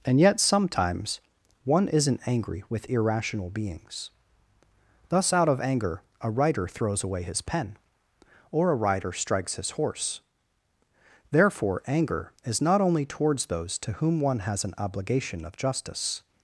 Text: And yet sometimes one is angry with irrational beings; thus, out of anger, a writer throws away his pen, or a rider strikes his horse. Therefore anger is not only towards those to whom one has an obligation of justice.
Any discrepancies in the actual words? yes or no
yes